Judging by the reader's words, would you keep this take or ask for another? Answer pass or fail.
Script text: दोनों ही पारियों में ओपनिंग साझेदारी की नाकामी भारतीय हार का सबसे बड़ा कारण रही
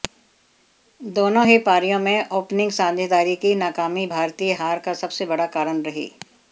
pass